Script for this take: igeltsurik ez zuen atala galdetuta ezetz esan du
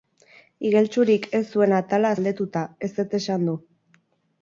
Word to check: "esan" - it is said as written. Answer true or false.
true